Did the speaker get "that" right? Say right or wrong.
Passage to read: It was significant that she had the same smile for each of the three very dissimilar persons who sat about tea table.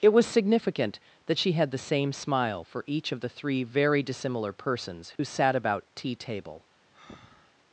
right